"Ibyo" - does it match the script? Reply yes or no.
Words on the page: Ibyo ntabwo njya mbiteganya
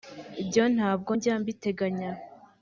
yes